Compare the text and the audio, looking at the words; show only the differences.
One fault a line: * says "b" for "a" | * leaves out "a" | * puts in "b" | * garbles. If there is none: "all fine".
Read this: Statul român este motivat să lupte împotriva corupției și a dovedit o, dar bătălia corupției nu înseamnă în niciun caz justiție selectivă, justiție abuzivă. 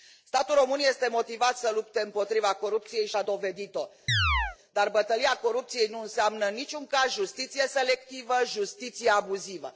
all fine